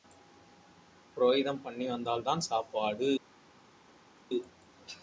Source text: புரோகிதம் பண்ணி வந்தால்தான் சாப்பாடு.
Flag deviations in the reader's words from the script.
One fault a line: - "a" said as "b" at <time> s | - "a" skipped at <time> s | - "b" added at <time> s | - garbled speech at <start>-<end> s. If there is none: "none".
none